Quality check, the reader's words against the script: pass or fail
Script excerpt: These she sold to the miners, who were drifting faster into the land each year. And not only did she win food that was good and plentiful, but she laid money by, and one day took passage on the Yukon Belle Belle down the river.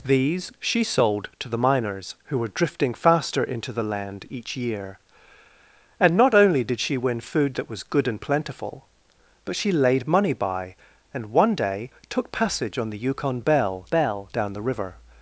pass